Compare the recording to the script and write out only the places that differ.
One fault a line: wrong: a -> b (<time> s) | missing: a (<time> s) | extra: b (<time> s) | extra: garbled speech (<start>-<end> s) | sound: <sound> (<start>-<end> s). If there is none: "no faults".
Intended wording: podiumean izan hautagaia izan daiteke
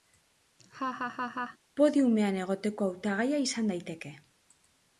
sound: laugh (0.6-1.6 s)
wrong: izan -> egoteko (2.5 s)